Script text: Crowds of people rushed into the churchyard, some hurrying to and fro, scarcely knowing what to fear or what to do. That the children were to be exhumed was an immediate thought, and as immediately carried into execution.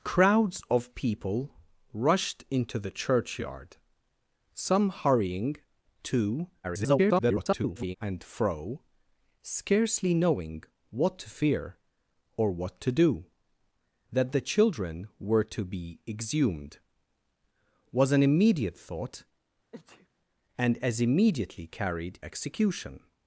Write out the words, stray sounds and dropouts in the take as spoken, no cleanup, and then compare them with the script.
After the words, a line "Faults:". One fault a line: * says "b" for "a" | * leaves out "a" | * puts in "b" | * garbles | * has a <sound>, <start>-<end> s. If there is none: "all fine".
Crowds of people rushed into the churchyard, some hurrying to [garbled] and fro, scarcely knowing what to fear or what to do. That the children were to be exhumed was an immediate thought, and as immediately carried execution.
Faults:
* garbles
* has a sneeze, 19.7-20.1 s
* leaves out "into"